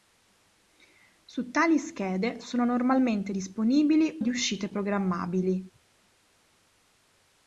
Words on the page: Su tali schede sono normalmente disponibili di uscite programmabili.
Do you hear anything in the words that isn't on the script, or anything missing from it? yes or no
no